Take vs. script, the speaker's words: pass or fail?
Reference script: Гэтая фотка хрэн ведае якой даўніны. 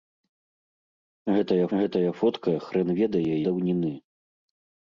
fail